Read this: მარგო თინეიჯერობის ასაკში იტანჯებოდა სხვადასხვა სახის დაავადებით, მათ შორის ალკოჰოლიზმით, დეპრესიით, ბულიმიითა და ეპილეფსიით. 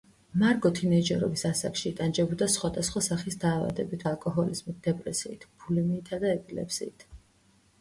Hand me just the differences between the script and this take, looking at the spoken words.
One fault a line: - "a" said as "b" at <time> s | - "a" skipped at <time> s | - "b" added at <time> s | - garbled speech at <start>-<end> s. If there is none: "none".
- "მათ შორის" skipped at 4.0 s